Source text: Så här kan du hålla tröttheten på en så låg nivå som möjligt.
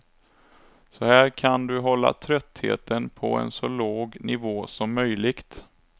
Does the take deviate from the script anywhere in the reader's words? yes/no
no